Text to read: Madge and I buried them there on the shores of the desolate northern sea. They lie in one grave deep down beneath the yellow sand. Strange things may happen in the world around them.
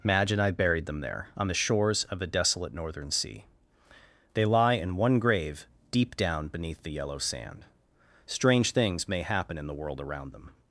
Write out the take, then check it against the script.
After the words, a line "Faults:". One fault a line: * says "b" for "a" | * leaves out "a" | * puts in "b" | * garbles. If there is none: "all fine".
Madge and I buried them there on the shores of the desolate northern sea. They lie in one grave deep down beneath the yellow sand. Strange things may happen in the world around them.
Faults:
all fine